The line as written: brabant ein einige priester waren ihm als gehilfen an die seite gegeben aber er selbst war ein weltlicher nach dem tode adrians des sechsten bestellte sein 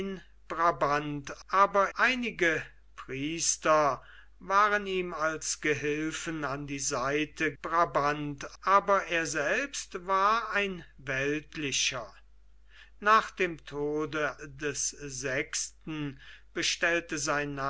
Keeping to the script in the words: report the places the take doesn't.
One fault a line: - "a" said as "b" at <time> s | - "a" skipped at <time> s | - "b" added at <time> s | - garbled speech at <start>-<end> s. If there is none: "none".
- "ein" said as "aber" at 1.5 s
- "gegeben" said as "brabant" at 7.6 s
- "adrians" skipped at 14.3 s